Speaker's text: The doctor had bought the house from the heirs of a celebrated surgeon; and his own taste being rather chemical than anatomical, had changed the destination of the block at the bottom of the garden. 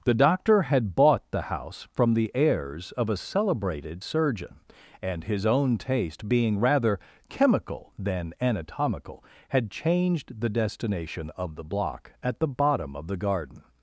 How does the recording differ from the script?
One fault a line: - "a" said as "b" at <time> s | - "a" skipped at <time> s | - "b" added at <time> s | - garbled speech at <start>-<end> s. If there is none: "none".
none